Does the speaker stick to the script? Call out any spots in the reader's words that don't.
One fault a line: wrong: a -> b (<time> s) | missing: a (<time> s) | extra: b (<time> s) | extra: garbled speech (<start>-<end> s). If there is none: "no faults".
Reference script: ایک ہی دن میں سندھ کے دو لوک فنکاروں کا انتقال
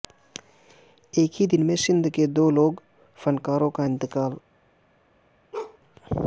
no faults